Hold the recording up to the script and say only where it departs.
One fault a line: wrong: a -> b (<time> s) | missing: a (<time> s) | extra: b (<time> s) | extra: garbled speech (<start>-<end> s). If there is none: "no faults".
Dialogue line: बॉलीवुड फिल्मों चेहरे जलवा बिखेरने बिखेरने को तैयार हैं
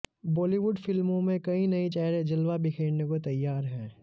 extra: में कई नए (1.2 s)
missing: बिखेरने (3.0 s)